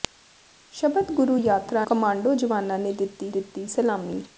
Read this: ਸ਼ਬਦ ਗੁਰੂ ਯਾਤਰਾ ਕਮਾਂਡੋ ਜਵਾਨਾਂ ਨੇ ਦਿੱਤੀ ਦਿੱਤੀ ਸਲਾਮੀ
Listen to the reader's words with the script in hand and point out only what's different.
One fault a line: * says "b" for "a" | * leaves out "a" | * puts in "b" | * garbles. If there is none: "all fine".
all fine